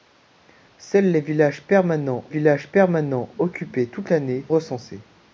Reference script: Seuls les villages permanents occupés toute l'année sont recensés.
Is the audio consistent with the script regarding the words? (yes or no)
no